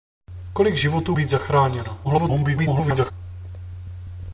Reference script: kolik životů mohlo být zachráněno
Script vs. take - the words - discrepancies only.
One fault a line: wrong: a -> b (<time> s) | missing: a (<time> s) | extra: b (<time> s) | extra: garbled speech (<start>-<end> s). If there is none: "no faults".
missing: mohlo (1.2 s)
extra: garbled speech (2.0-3.1 s)